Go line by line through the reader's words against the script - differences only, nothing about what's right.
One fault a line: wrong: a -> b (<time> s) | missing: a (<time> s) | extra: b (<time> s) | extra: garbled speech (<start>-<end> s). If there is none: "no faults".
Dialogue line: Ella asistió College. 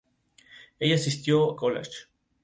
no faults